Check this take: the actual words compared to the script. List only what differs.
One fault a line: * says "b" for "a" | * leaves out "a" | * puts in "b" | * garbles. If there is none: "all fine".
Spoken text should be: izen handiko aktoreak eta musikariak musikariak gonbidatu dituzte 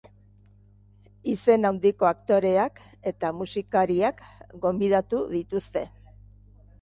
* leaves out "musikariak"